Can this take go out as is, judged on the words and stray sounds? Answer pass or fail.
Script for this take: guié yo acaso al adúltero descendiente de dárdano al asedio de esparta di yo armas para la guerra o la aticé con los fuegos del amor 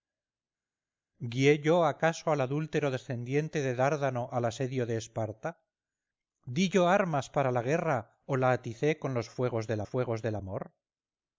fail